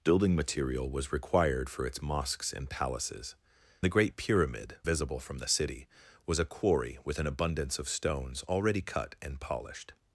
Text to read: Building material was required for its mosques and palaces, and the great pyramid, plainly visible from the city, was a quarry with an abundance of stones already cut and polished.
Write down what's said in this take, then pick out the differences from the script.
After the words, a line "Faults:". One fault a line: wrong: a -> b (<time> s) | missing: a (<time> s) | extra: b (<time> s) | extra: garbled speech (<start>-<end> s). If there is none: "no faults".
Building material was required for its mosques and palaces, the great pyramid, visible from the city, was a quarry with an abundance of stones already cut and polished.
Faults:
missing: and (3.4 s)
missing: plainly (4.8 s)